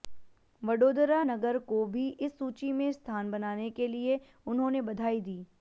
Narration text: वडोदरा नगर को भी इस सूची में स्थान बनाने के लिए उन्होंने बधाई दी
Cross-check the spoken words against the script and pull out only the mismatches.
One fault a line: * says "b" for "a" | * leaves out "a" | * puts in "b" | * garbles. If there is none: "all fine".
all fine